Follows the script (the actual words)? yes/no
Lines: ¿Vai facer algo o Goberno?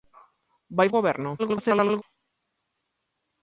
no